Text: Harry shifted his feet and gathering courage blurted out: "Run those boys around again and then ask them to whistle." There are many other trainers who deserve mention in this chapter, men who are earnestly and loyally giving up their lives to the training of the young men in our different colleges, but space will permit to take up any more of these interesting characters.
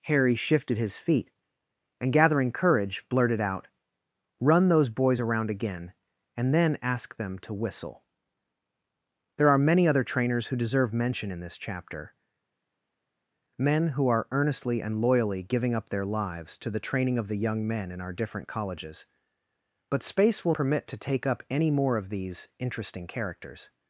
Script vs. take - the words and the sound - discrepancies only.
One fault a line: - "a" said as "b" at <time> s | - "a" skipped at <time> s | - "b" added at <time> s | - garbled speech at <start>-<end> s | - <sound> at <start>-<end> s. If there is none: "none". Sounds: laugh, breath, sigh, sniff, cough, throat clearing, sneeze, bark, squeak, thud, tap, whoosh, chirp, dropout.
none